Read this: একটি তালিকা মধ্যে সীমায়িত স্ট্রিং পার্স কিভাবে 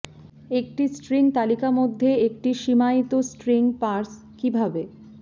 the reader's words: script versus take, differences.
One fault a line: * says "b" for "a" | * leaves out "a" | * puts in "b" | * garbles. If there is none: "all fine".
* puts in "স্ট্রিং"
* puts in "একটি"